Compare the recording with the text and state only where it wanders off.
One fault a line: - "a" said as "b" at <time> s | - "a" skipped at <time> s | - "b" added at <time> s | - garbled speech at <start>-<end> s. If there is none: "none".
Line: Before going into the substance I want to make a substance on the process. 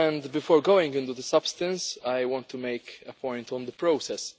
- "substance" said as "point" at 3.1 s